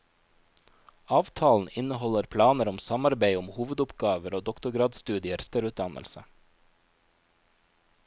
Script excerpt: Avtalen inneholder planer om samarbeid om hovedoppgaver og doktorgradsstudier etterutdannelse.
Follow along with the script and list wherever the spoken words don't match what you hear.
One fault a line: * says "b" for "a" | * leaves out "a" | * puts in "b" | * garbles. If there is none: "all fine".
all fine